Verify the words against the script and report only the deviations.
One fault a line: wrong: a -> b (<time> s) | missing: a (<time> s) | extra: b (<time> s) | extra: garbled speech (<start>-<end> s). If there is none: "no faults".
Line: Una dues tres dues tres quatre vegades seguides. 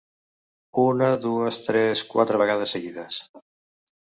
missing: dues tres (2.0 s)